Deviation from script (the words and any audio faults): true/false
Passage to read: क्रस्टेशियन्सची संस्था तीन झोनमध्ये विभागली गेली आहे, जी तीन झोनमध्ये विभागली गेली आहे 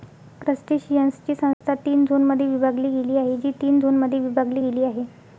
true